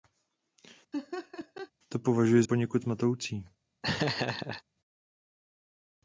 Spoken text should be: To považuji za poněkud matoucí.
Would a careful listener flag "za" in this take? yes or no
yes